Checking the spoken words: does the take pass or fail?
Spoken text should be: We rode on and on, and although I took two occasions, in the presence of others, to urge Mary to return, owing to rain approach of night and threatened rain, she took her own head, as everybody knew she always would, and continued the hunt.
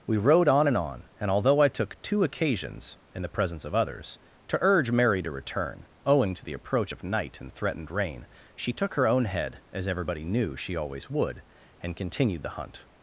fail